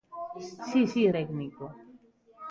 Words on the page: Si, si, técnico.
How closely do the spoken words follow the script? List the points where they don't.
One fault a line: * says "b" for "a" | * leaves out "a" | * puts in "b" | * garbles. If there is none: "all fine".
all fine